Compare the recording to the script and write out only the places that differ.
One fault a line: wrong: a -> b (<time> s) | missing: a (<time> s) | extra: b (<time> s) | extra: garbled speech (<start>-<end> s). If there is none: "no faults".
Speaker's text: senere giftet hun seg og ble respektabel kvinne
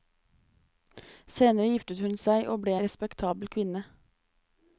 no faults